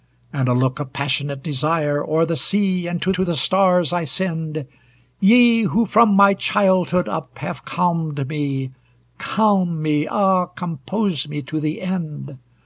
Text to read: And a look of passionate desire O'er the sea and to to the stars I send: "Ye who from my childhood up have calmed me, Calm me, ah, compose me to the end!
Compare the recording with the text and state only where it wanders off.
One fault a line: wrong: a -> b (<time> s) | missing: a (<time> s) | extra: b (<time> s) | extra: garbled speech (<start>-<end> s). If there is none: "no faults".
no faults